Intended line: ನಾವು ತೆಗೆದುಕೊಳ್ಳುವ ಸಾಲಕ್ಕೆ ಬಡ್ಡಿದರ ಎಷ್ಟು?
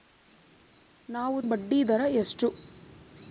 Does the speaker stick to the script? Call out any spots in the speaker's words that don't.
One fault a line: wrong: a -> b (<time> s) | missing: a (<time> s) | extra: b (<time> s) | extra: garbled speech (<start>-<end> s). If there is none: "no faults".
missing: ತೆಗೆದುಕೊಳ್ಳುವ ಸಾಲಕ್ಕೆ (1.4 s)